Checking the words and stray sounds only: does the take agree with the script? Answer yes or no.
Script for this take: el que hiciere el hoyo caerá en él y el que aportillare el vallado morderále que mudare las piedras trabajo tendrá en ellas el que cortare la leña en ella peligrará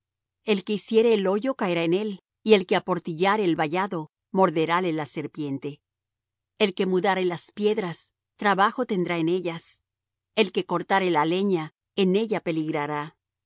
no